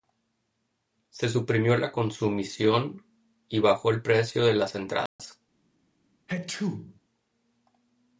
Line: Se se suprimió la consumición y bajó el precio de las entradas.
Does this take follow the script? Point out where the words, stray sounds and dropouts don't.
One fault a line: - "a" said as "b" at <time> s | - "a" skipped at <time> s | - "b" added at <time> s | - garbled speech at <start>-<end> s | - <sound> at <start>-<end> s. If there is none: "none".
- "se" skipped at 1.3 s
- dropout at 5.1-5.2 s
- sneeze at 6.3-7.0 s